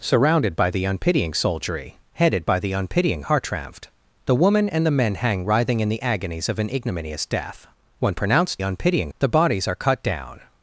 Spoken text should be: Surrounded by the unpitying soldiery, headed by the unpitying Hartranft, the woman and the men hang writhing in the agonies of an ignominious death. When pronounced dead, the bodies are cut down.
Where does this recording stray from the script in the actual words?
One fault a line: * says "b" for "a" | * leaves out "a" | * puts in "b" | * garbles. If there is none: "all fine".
* says "unpitying" for "dead"